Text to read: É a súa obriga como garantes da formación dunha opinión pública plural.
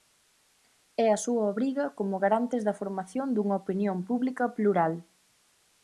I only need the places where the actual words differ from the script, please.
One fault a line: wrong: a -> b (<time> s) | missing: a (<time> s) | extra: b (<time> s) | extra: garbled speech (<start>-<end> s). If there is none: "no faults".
no faults